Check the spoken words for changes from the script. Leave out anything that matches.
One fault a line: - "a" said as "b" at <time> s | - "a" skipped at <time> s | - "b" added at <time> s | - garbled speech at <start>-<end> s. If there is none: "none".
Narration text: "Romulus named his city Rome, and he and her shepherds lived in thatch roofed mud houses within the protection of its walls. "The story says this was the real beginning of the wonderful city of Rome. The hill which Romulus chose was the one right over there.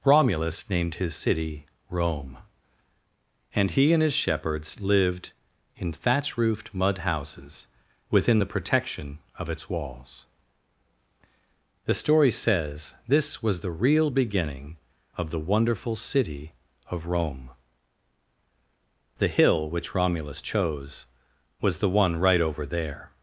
- "her" said as "his" at 4.0 s